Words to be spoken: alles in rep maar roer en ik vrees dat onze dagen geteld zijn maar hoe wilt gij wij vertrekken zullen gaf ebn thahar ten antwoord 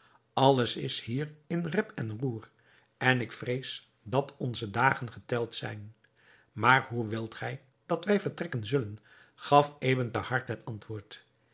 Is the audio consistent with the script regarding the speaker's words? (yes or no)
no